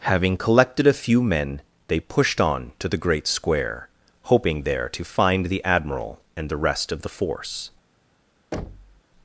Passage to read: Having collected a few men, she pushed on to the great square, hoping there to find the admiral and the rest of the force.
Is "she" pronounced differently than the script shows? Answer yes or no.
yes